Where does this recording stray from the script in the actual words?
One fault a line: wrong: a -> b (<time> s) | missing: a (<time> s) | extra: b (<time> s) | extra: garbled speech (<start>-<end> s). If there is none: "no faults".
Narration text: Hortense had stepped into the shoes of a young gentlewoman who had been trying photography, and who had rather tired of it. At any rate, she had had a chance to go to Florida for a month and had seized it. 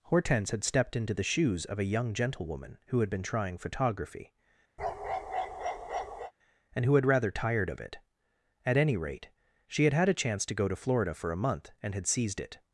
no faults